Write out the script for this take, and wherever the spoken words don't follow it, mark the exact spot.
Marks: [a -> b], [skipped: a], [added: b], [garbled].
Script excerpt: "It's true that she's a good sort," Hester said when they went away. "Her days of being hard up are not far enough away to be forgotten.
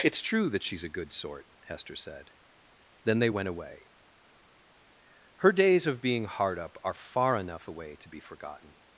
"It's true that she's a good sort," Hester said [when -> then] they went away. "Her days of being hard up are [skipped: not] far enough away to be forgotten.